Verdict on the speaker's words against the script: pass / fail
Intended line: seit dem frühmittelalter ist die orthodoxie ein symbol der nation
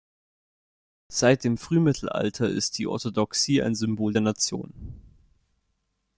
pass